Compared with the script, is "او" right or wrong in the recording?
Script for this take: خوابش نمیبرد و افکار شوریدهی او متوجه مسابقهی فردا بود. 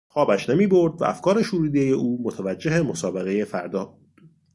right